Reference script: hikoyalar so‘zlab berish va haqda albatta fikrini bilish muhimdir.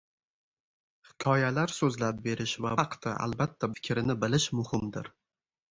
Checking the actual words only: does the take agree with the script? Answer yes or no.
yes